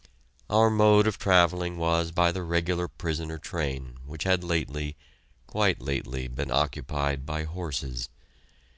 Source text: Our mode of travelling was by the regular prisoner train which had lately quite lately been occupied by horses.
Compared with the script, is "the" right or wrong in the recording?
right